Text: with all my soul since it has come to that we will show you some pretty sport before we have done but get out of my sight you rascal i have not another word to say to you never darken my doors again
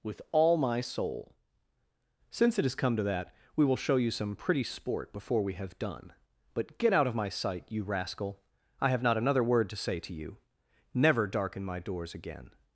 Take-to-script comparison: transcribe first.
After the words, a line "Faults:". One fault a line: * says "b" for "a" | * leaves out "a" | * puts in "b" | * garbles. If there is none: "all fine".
with all my soul since it has come to that we will show you some pretty sport before we have done but get out of my sight you rascal i have not another word to say to you never darken my doors again
Faults:
all fine